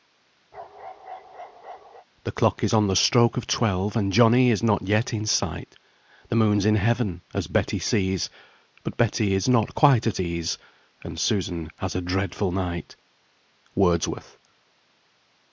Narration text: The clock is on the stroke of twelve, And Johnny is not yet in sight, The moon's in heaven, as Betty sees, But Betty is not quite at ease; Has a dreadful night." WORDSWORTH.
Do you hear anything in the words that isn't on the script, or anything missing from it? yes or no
yes